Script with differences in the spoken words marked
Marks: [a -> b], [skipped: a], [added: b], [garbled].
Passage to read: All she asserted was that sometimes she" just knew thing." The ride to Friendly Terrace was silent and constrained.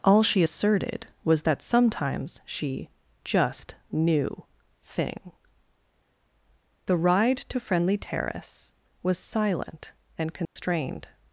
All she asserted was that sometimes she" just knew thing." The ride to Friendly Terrace was silent and constrained.